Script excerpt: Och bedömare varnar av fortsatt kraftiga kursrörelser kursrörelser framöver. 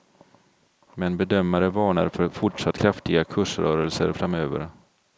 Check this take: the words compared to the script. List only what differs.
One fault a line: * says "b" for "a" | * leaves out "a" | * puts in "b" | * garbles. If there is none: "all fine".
* says "Men" for "Och"
* says "för" for "av"
* leaves out "kursrörelser"